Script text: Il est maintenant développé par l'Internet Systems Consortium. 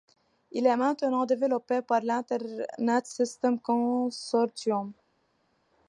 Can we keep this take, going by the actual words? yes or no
yes